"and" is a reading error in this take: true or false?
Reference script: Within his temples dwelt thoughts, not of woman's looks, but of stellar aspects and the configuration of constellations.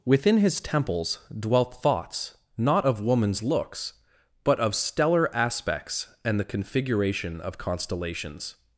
false